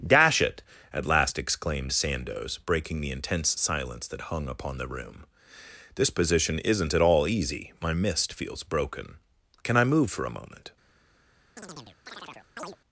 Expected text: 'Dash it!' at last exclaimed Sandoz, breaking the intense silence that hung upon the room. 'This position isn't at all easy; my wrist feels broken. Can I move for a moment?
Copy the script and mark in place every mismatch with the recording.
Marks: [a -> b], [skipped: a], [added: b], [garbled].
'Dash it!' at last exclaimed Sandoz, breaking the intense silence that hung upon the room. 'This position isn't at all easy; my [wrist -> mist] feels broken. Can I move for a moment?